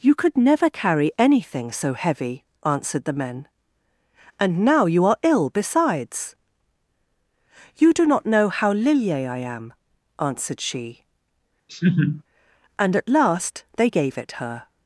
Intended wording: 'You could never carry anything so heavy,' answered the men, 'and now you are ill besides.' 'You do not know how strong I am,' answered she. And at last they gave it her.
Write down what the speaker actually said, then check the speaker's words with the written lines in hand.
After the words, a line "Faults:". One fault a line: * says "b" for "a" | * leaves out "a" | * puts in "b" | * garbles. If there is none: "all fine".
'You could never carry anything so heavy,' answered the men, 'and now you are ill besides.' 'You do not know how lilye I am,' answered she. And at last they gave it her.
Faults:
* says "lilye" for "strong"